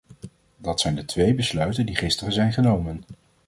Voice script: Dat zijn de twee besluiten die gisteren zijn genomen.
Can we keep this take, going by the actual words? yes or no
yes